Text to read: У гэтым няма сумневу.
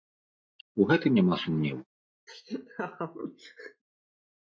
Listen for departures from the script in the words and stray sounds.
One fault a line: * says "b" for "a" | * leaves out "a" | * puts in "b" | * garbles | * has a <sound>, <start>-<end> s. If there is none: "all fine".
* has a laugh, 2.3-3.8 s